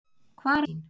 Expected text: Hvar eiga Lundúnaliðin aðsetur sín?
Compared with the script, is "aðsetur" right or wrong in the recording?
wrong